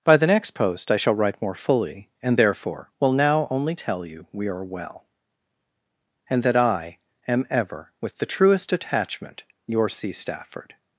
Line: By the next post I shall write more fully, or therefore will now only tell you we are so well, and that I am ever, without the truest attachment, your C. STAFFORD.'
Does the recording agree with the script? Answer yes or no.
no